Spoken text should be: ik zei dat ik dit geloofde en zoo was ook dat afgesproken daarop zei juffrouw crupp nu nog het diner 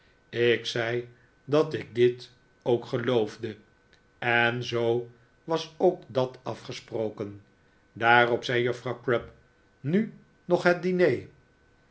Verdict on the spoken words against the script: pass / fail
fail